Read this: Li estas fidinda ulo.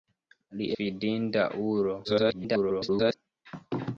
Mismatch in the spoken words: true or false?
true